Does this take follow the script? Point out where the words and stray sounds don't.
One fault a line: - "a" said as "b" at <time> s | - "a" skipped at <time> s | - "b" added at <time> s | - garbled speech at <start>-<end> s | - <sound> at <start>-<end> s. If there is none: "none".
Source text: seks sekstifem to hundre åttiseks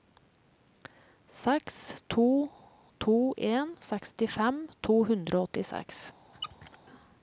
- "to to en" added at 2.1 s
- "og" added at 5.4 s
- squeak at 6.3-6.8 s